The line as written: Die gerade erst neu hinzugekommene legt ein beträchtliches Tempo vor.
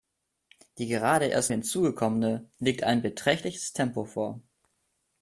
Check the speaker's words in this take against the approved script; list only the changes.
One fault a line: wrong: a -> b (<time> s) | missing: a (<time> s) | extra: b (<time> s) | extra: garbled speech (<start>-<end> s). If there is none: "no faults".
missing: neu (1.5 s)